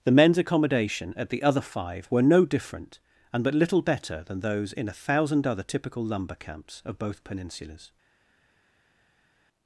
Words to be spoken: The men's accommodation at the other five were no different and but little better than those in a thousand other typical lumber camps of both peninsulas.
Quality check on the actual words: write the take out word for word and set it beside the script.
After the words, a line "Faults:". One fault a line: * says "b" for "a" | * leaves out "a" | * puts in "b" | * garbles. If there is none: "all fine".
The men's accommodation at the other five were no different and but little better than those in a thousand other typical lumber camps of both peninsulas.
Faults:
all fine